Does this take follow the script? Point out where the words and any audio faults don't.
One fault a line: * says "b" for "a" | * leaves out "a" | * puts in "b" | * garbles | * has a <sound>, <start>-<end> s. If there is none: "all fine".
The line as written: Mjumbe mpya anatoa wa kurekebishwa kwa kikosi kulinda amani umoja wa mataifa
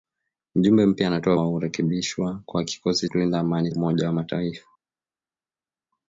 all fine